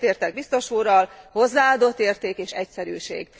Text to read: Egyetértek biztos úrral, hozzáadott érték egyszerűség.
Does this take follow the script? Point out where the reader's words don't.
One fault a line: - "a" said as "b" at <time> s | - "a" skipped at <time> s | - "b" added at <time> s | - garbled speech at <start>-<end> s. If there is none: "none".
- "és" added at 2.4 s